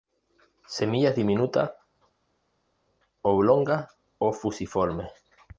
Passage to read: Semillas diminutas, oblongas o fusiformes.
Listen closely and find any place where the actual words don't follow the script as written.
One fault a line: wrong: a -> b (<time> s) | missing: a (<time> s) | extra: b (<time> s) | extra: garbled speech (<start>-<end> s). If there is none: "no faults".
no faults